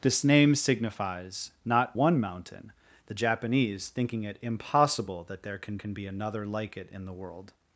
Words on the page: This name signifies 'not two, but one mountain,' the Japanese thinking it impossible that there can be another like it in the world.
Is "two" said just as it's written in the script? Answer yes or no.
no